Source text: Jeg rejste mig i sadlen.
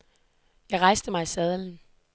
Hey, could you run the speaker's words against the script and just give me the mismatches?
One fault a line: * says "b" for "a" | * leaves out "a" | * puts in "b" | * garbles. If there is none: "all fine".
all fine